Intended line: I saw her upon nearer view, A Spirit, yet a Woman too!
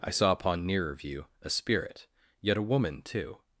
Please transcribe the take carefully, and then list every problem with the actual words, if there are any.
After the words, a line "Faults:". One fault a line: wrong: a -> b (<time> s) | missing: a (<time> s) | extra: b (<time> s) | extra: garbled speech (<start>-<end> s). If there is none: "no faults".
I saw upon nearer view, A Spirit, yet a Woman too!
Faults:
missing: her (0.3 s)